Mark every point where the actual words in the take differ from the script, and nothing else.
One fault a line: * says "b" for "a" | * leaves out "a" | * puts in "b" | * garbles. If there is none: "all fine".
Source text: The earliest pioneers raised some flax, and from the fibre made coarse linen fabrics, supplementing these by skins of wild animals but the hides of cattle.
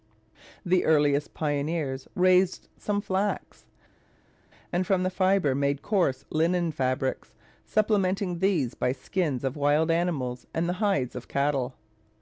* says "and" for "but"